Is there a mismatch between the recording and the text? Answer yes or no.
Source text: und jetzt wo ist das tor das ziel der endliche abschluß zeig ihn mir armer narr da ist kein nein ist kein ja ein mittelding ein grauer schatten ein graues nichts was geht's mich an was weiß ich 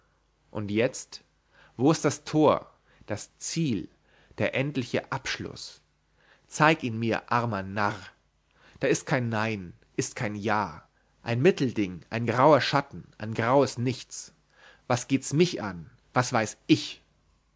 no